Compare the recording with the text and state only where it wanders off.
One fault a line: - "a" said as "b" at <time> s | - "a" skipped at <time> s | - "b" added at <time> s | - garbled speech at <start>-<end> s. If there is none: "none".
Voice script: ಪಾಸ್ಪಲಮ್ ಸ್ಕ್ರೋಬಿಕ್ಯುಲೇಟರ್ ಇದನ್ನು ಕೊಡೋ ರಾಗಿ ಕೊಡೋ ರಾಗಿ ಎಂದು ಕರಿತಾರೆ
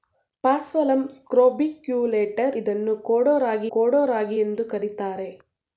none